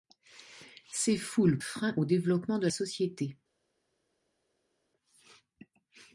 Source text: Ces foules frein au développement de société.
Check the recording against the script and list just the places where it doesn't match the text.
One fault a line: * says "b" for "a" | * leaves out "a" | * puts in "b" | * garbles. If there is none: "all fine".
all fine